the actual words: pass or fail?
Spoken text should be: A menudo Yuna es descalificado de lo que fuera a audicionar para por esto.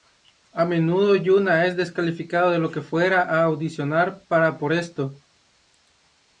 pass